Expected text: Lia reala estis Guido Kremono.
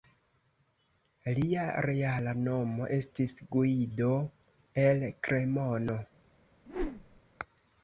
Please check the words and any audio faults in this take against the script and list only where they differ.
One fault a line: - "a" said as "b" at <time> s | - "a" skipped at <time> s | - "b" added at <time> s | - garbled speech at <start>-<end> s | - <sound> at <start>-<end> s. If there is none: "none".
- "nomo" added at 2.5 s
- "el" added at 4.9 s
- whoosh at 6.7-7.2 s